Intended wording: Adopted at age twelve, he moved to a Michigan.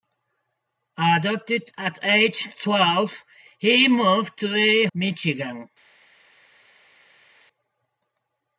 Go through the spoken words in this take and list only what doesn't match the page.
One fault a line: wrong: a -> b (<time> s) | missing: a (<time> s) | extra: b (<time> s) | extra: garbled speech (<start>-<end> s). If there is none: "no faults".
no faults